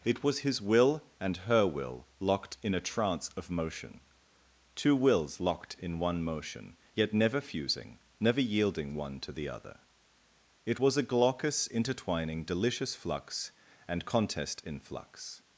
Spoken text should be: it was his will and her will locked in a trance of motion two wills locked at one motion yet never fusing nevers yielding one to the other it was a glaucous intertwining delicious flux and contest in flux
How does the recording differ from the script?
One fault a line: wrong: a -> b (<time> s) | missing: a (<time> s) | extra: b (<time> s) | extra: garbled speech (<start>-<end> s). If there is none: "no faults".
wrong: at -> in (5.8 s)
wrong: nevers -> never (8.2 s)